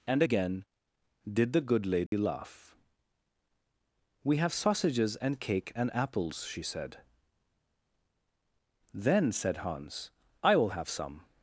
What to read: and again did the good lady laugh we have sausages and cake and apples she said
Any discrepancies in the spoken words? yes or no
yes